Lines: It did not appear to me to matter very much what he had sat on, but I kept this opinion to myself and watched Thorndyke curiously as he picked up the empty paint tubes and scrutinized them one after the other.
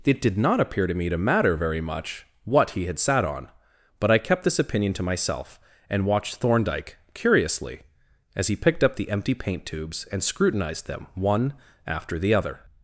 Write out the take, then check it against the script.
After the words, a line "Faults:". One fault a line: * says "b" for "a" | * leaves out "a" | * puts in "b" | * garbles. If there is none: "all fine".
It did not appear to me to matter very much what he had sat on, but I kept this opinion to myself and watched Thorndyke curiously as he picked up the empty paint tubes and scrutinized them one after the other.
Faults:
all fine